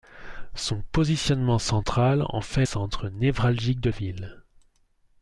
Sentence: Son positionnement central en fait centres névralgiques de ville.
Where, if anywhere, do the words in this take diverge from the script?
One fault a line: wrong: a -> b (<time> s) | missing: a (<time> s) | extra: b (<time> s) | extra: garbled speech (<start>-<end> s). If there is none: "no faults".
no faults